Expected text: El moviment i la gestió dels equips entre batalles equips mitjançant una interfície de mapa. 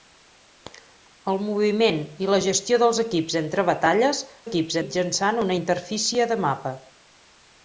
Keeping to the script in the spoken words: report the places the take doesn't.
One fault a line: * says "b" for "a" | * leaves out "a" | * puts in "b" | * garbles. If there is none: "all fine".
all fine